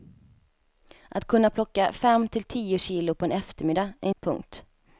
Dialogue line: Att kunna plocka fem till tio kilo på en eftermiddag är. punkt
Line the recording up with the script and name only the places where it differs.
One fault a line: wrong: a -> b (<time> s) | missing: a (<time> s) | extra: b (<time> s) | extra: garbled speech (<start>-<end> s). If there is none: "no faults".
no faults